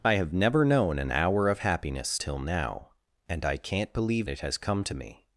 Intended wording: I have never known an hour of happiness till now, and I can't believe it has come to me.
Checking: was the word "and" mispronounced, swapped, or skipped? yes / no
no